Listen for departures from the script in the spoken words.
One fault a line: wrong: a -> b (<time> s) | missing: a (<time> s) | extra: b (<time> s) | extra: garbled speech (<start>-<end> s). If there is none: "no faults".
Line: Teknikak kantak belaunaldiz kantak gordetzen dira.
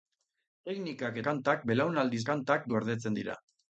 no faults